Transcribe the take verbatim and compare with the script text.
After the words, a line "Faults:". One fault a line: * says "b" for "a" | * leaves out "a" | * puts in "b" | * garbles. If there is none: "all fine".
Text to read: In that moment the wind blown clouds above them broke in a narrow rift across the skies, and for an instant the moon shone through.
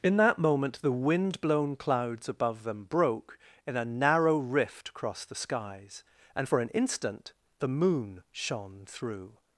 In that moment the wind blown clouds above them broke in a narrow rift across the skies, and for an instant the moon shone through.
Faults:
all fine